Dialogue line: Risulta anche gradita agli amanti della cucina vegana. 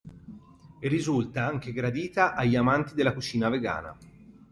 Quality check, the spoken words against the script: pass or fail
pass